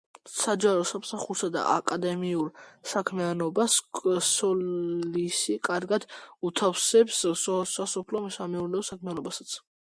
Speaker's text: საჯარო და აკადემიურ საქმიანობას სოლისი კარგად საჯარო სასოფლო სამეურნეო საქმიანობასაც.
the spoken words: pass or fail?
fail